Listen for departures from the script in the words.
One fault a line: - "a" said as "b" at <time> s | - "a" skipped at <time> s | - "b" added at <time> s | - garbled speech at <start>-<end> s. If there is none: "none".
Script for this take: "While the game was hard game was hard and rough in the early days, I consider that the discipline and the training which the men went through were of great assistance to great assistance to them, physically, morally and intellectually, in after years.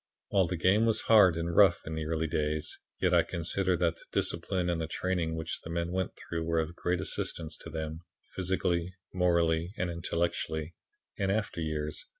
- "game was hard" skipped at 1.4 s
- "yet" added at 3.0 s
- "great assistance to" skipped at 7.7 s